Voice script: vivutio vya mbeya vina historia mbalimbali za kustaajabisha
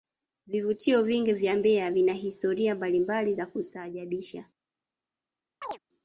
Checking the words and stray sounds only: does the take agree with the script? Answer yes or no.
no